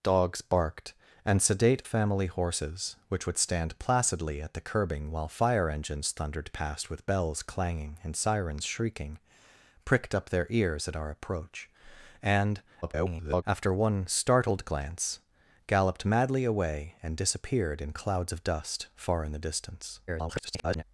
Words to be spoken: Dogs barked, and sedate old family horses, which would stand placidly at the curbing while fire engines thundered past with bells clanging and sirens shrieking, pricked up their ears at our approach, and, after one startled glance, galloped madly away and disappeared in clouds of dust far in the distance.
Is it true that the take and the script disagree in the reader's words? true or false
true